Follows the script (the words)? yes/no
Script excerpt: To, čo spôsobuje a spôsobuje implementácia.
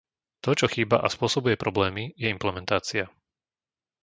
no